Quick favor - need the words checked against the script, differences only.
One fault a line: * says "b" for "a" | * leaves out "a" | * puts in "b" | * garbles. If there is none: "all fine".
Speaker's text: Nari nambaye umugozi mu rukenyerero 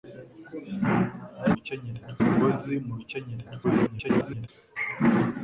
* says "rukenyerero" for "nambaye"
* garbles